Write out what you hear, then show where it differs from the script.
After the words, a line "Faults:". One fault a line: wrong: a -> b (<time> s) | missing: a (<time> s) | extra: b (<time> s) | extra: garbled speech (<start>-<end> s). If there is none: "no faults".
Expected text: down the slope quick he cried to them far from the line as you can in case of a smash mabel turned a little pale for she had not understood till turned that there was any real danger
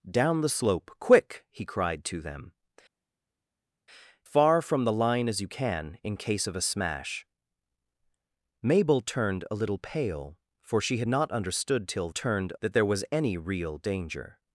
down the slope quick he cried to them far from the line as you can in case of a smash mabel turned a little pale for she had not understood till turned that there was any real danger
Faults:
no faults